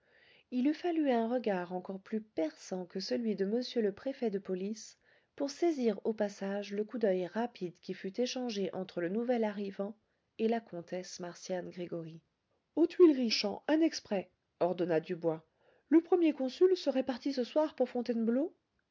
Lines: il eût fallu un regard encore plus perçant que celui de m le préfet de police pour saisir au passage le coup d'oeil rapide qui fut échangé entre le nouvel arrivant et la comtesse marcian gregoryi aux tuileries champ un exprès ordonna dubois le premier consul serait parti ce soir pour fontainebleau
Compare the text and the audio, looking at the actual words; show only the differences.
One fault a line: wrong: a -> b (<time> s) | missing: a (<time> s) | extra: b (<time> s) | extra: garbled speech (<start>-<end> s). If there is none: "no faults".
no faults